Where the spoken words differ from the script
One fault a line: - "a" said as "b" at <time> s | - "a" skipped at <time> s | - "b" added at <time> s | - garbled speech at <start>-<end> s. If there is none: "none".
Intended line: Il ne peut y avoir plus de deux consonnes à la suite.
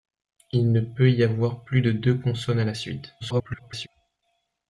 - garbled speech at 3.2-3.9 s